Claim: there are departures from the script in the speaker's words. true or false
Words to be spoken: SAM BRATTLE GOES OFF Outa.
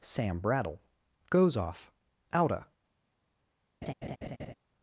false